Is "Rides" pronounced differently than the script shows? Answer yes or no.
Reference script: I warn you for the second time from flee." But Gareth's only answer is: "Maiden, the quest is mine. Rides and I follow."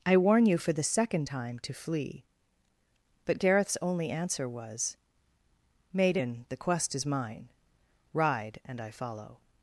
yes